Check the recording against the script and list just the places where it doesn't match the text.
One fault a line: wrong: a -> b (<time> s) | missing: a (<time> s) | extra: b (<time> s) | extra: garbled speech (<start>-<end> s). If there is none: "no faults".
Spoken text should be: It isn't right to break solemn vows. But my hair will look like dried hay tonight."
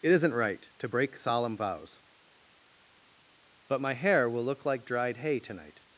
no faults